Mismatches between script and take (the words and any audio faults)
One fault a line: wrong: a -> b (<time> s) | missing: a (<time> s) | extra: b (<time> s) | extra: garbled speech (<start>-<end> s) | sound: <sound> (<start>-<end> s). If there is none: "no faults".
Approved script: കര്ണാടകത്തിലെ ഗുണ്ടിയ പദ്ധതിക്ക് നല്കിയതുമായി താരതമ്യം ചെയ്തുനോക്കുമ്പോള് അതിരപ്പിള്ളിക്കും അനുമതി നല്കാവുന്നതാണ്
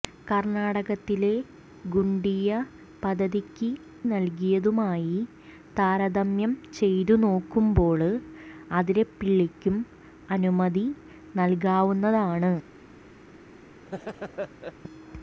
sound: laugh (13.8-14.7 s)